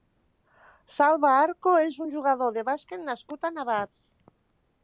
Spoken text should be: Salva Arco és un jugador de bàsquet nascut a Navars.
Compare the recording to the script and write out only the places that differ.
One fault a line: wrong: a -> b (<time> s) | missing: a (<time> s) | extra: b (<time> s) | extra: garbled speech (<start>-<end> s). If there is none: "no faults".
no faults